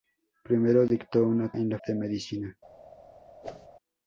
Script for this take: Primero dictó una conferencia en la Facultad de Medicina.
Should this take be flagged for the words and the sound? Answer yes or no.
yes